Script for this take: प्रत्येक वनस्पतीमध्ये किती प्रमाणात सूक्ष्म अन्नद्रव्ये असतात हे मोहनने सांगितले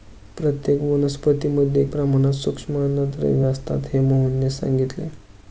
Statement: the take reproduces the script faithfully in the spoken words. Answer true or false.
false